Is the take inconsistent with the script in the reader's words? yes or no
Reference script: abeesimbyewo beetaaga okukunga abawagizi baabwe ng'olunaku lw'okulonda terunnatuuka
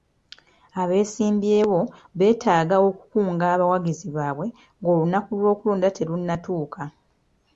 no